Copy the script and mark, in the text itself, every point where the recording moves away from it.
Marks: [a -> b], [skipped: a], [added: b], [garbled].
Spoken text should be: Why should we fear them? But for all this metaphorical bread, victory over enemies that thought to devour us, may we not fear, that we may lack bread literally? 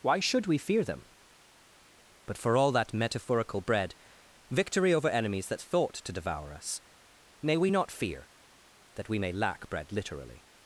Why should we fear them? But for all [this -> that] metaphorical bread, victory over enemies that thought to devour us, may we not fear, that we may lack bread literally?